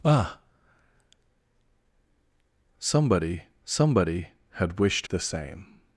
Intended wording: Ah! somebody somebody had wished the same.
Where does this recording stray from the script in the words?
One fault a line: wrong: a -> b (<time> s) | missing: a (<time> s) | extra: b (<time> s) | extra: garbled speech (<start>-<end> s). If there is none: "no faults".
no faults